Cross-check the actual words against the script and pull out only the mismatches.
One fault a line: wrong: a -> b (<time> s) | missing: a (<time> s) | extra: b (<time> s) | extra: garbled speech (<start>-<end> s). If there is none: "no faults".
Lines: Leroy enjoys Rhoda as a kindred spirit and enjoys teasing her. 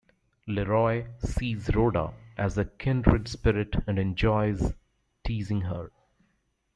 wrong: enjoys -> sees (1.2 s)